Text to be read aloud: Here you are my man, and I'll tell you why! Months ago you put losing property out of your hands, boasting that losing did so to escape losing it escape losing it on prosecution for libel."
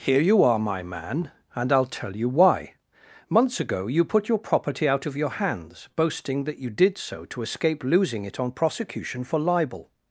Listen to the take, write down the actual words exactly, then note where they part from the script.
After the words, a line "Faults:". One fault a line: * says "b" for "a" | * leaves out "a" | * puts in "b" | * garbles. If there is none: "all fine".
Here you are my man, and I'll tell you why! Months ago you put your property out of your hands, boasting that you did so to escape losing it on prosecution for libel."
Faults:
* says "your" for "losing"
* says "you" for "losing"
* leaves out "escape losing it"